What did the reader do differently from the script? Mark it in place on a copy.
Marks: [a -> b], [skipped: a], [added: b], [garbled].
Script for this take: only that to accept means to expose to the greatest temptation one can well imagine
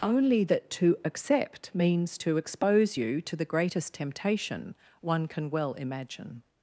only that to accept means to expose [added: you] to the greatest temptation one can well imagine